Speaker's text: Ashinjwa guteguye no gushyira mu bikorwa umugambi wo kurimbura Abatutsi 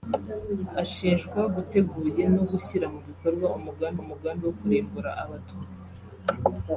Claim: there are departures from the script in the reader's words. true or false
true